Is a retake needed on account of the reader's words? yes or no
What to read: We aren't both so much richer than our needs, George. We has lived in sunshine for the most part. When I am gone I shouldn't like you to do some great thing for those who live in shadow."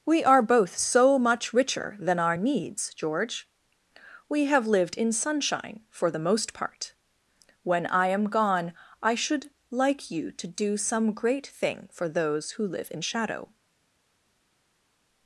yes